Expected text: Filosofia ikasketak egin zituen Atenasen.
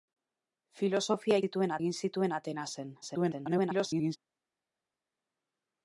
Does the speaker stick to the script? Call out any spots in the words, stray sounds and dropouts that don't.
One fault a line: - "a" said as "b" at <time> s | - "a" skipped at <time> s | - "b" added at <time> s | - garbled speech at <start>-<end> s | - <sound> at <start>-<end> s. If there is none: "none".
- "ikasketak" said as "zituen" at 1.4 s
- garbled speech at 3.0-4.2 s